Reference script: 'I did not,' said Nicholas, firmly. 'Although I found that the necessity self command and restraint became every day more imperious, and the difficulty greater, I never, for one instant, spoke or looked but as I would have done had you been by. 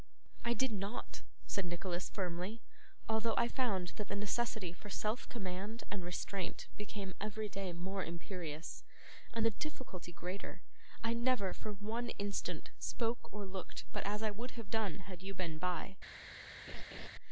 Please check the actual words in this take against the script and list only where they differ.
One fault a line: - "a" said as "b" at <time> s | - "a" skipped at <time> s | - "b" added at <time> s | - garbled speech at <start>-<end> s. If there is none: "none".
- "for" added at 4.7 s